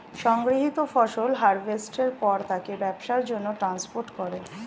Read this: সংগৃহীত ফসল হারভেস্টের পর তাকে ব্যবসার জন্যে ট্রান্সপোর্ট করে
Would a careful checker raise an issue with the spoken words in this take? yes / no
no